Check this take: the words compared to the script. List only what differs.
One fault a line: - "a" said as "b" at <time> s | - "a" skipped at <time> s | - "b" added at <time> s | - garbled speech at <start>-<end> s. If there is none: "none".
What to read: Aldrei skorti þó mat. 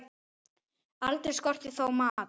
none